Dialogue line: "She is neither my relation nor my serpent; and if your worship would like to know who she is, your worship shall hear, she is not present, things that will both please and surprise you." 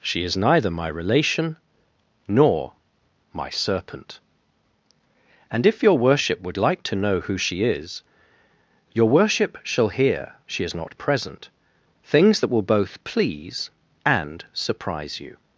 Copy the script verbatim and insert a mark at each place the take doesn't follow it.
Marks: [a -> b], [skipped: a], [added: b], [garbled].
"She is neither my relation nor my serpent; and if your worship would like to know who she is, your worship shall hear, she is not present, things that will both please and surprise you."